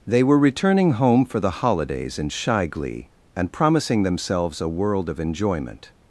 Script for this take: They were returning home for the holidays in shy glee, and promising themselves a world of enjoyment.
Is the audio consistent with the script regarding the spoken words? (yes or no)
yes